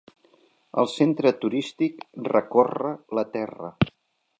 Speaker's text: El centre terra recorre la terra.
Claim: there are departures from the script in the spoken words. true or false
true